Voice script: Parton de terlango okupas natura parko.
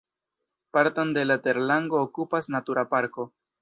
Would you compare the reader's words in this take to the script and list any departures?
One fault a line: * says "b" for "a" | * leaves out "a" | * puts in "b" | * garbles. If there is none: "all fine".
* puts in "la"